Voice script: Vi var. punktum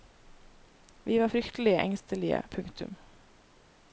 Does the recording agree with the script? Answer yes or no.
no